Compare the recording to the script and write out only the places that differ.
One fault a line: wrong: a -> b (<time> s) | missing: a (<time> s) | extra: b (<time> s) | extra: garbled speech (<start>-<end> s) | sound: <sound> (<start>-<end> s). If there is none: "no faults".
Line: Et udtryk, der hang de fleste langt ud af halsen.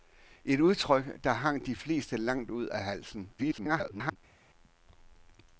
extra: garbled speech (3.4-4.2 s)